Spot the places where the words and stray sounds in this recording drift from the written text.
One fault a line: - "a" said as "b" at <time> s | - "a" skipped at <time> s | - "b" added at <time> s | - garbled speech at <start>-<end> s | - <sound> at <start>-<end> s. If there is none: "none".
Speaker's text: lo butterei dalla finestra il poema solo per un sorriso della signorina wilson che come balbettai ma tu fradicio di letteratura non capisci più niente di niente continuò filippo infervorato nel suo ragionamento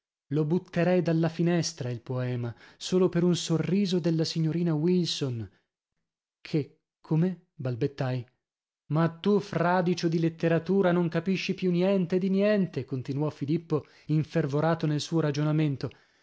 none